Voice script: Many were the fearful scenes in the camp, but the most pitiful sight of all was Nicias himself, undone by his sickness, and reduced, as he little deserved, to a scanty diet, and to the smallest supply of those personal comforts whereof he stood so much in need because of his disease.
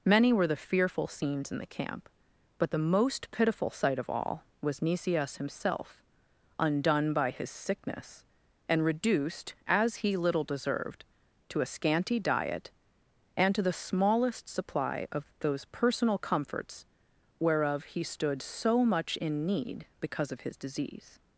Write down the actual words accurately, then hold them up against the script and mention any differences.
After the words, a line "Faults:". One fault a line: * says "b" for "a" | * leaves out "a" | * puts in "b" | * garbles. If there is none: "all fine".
Many were the fearful scenes in the camp, but the most pitiful sight of all was Nicias himself, undone by his sickness, and reduced, as he little deserved, to a scanty diet, and to the smallest supply of those personal comforts whereof he stood so much in need because of his disease.
Faults:
all fine